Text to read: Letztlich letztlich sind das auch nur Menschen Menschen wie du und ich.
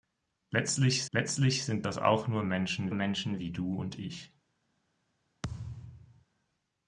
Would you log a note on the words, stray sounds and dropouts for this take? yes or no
yes